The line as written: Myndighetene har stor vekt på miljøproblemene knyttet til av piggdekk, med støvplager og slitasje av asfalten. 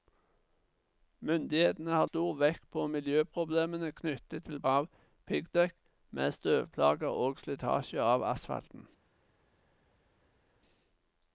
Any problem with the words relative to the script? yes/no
no